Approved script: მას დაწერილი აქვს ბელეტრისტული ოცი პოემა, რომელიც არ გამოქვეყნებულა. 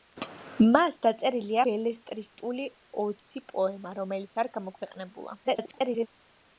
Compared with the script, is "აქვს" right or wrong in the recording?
wrong